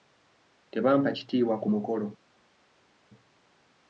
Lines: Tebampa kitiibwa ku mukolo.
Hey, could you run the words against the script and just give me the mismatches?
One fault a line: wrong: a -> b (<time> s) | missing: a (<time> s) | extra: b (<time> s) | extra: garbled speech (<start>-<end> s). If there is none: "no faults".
no faults